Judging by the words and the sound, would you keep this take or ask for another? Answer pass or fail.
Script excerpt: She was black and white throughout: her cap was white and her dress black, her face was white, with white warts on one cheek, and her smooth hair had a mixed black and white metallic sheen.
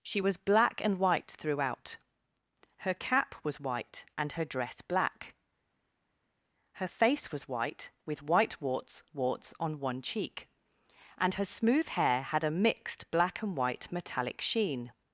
fail